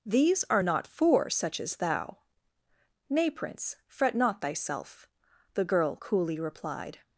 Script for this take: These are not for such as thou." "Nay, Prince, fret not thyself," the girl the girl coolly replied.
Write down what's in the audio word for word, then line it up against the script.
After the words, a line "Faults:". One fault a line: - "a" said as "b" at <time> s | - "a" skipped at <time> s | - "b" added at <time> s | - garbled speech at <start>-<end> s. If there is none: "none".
These are not for such as thou." "Nay, Prince, fret not thyself," the girl coolly replied.
Faults:
- "the girl" skipped at 6.0 s